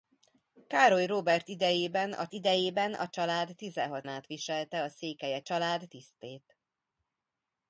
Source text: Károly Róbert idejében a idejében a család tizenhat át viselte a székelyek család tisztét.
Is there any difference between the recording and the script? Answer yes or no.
no